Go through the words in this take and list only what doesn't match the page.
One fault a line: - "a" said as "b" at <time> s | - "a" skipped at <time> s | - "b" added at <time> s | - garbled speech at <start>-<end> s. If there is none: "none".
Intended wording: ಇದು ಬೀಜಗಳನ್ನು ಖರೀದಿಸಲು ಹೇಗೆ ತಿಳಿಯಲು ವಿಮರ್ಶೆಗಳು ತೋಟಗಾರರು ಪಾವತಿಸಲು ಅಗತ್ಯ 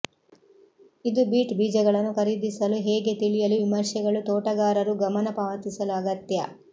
- "ಬೀಟ್" added at 1.3 s
- "ಗಮನ" added at 5.0 s